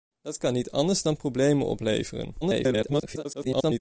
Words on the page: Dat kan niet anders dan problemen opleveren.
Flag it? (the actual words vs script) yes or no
yes